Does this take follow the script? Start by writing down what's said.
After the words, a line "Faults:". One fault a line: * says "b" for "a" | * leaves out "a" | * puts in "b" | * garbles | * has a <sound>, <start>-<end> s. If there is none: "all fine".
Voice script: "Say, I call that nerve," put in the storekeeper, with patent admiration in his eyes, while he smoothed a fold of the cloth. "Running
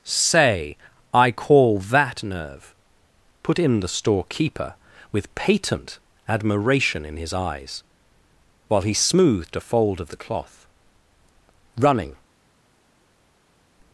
"Say, I call that nerve," put in the storekeeper, with patent admiration in his eyes, while he smoothed a fold of the cloth. "Running
Faults:
all fine